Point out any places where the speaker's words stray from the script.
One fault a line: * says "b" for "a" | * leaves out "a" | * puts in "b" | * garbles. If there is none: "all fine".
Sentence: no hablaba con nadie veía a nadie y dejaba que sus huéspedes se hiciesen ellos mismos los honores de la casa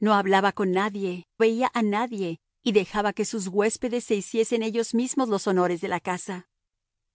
all fine